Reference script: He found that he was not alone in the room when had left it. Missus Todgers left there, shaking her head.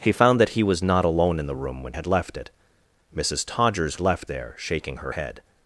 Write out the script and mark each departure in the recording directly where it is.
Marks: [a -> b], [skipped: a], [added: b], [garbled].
He found that he was not alone in the room when had left it. Missus Todgers left there, shaking her head.